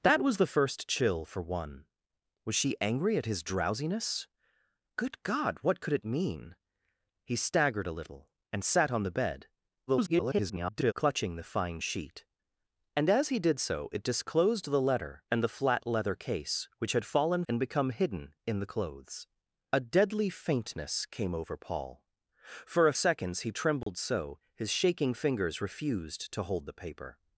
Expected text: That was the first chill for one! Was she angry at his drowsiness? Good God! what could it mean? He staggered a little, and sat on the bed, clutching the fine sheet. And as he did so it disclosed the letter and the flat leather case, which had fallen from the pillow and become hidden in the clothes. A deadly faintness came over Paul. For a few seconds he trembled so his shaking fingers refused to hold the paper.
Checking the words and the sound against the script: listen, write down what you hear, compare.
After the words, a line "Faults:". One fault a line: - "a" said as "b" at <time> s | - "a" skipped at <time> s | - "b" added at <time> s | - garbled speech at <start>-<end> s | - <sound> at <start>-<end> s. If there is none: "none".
That was the first chill for one! Was she angry at his drowsiness? Good God! what could it mean? He staggered a little, and sat on the bed, [garbled] clutching the fine sheet. And as he did so it disclosed the letter and the flat leather case, which had fallen and become hidden in the clothes. A deadly faintness came over Paul. For a seconds he trembled so his shaking fingers refused to hold the paper.
Faults:
- garbled speech at 9.9-10.9 s
- "from the pillow" skipped at 17.4 s
- "few" skipped at 22.9 s
- dropout at 23.8-23.9 s